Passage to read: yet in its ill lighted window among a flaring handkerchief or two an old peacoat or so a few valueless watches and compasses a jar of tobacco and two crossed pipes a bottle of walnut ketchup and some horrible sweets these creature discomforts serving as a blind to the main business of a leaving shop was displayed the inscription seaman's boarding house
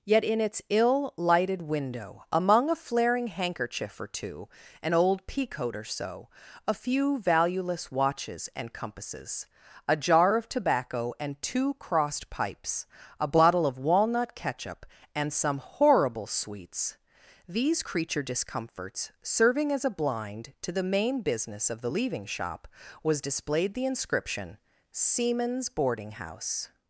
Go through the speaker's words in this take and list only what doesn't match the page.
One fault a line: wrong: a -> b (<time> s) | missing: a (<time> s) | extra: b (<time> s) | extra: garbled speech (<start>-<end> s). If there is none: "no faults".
wrong: a -> the (21.8 s)